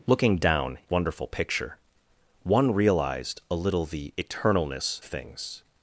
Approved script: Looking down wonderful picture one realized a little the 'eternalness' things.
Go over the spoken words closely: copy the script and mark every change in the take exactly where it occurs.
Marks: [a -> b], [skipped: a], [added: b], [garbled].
Looking down wonderful picture one realized a little the 'eternalness' things.